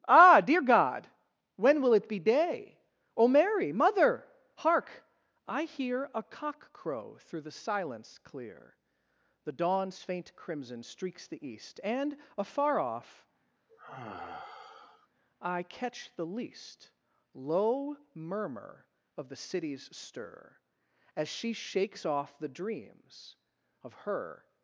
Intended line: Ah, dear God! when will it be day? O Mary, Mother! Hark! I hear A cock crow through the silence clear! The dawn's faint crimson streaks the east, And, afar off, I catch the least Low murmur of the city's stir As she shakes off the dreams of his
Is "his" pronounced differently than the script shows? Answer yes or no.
yes